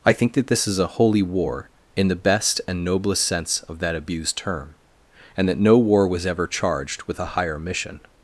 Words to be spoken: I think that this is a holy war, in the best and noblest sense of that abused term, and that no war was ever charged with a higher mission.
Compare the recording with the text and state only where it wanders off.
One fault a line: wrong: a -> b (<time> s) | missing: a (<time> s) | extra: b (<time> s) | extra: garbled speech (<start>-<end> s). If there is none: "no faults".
no faults